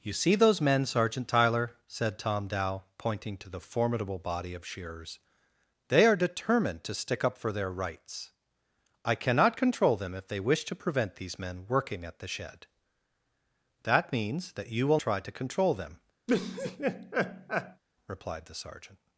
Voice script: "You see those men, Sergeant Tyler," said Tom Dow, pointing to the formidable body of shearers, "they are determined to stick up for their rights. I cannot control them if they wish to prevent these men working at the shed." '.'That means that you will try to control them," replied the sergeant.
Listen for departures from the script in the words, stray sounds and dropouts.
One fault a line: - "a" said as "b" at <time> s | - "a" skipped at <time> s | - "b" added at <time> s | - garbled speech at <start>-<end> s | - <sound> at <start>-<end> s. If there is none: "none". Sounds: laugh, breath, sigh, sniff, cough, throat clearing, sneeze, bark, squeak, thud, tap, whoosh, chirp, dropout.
- laugh at 16.3-17.8 s